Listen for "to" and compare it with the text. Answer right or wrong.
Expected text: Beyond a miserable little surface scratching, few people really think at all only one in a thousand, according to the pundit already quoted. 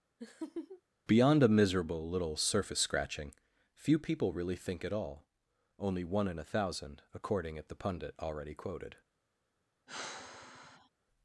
wrong